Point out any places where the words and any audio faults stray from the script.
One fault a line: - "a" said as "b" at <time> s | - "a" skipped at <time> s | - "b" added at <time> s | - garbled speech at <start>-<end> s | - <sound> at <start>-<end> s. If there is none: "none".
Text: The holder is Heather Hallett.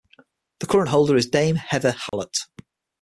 - "current" added at 0.7 s
- "Dame" added at 1.3 s
- dropout at 2.1-2.1 s